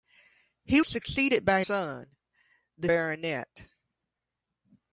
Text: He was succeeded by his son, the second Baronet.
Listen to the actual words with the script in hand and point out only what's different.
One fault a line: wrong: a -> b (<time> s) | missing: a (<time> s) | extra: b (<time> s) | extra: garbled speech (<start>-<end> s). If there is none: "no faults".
missing: was (0.8 s)
missing: his (1.6 s)
missing: second (2.9 s)